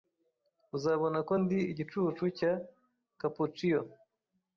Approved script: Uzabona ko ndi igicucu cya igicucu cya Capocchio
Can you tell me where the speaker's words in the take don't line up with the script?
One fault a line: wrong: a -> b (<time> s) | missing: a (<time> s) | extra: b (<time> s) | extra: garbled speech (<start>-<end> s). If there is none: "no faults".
missing: igicucu cya (2.5 s)